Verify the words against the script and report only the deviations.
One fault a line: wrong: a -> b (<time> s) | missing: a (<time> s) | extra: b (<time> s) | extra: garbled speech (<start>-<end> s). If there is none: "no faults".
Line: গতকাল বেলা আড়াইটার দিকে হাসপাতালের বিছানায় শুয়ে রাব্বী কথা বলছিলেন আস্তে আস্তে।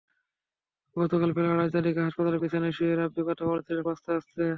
no faults